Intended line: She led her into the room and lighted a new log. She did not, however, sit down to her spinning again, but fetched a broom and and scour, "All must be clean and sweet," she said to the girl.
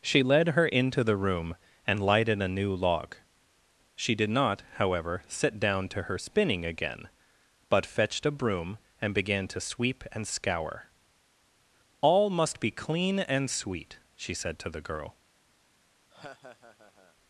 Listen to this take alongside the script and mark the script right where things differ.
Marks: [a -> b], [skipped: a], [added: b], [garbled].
She led her into the room and lighted a new log. She did not, however, sit down to her spinning again, but fetched a broom and [added: began to sweep] and scour, "All must be clean and sweet," she said to the girl.